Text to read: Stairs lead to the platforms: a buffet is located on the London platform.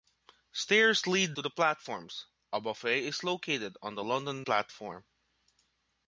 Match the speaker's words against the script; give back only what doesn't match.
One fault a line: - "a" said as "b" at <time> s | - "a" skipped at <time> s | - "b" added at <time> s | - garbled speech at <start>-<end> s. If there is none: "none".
none